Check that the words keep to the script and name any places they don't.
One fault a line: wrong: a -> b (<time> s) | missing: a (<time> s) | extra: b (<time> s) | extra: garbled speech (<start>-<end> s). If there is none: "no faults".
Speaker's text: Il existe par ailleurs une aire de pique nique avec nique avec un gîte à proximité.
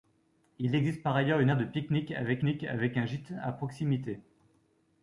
no faults